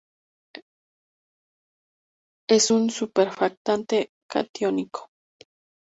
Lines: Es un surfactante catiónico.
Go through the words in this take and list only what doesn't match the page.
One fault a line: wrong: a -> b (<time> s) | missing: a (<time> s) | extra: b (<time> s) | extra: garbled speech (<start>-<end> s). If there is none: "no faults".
no faults